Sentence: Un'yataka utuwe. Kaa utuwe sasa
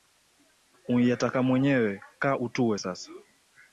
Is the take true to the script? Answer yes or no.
no